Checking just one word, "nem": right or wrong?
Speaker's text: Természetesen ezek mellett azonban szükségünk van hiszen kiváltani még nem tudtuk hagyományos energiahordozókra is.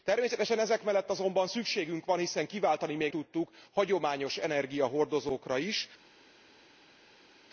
wrong